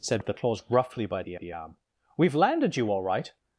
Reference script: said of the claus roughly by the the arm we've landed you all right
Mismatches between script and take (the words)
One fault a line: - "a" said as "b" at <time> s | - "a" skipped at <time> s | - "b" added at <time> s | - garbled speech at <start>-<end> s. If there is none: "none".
none